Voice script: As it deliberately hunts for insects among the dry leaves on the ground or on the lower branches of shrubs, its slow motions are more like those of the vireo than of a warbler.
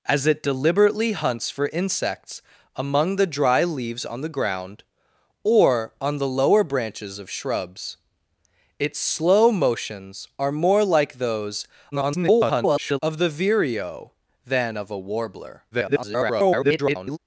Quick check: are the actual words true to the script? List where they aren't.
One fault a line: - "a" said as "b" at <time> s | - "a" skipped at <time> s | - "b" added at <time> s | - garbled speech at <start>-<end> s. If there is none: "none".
- garbled speech at 11.9-13.0 s
- garbled speech at 15.7-17.2 s